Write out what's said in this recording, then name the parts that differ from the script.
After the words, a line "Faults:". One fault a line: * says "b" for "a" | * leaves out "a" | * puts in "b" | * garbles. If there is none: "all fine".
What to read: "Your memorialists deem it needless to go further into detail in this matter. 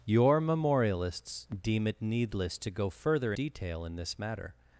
"Your memorialists deem it needless to go further detail in this matter.
Faults:
* leaves out "into"